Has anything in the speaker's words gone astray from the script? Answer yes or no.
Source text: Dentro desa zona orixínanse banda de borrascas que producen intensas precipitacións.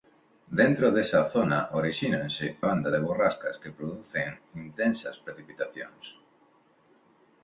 no